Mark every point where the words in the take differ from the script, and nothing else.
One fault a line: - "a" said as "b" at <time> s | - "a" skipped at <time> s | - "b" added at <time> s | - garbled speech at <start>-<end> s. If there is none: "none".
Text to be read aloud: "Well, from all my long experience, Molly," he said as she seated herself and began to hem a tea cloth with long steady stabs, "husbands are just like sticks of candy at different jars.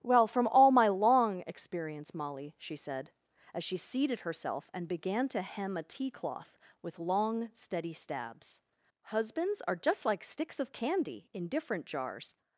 - "he" said as "she" at 2.6 s
- "at" said as "in" at 11.3 s